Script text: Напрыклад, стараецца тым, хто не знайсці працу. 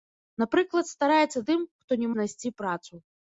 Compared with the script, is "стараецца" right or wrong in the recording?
right